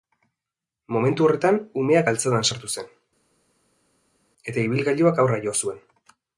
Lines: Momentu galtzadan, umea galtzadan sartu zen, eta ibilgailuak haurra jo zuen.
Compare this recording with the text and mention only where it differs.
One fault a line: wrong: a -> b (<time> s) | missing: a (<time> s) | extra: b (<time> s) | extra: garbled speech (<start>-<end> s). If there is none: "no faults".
wrong: galtzadan -> horretan (1.3 s)